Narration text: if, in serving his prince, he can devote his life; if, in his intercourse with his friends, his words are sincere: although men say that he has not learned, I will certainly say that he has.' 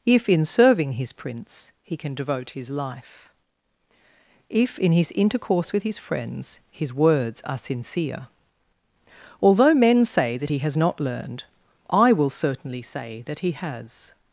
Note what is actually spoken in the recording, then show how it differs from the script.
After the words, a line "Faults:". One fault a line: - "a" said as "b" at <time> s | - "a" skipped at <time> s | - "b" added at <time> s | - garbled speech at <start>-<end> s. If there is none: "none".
if, in serving his prince, he can devote his life; if, in his intercourse with his friends, his words are sincere: although men say that he has not learned, I will certainly say that he has.'
Faults:
none